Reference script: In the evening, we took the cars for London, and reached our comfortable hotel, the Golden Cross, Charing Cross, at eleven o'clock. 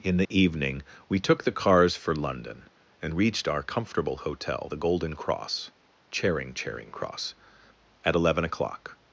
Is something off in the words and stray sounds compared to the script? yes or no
yes